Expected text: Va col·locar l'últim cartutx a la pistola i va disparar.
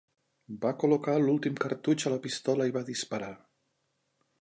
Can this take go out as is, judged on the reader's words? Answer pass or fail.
pass